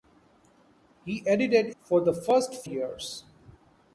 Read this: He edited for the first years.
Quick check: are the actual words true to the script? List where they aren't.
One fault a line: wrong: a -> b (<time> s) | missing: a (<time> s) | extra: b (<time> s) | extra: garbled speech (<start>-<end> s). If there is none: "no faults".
no faults